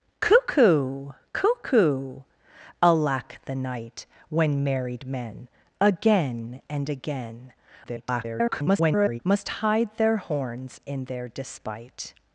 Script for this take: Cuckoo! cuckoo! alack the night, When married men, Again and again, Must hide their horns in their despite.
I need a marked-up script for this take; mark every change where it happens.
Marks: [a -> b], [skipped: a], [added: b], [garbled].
Cuckoo! cuckoo! alack the night, When married men, Again and again, [garbled] Must hide their horns in their despite.